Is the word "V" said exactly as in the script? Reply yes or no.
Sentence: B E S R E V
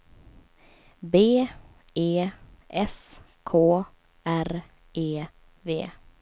yes